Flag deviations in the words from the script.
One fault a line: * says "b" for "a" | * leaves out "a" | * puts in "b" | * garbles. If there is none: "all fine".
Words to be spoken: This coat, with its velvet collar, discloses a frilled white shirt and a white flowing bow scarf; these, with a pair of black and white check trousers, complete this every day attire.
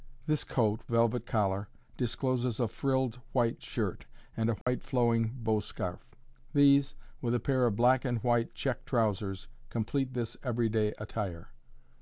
* leaves out "with its"